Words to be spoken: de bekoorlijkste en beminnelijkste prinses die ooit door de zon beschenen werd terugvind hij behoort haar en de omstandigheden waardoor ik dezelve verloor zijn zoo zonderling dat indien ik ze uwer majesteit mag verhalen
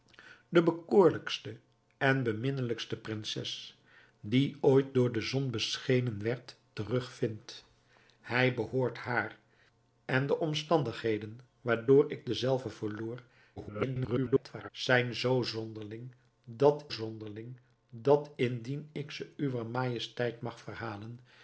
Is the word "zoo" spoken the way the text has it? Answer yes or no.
yes